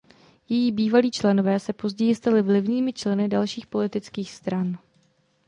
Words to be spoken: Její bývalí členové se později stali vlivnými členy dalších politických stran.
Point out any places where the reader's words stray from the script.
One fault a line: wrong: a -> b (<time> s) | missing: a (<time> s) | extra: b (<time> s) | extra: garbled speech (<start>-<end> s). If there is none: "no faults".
no faults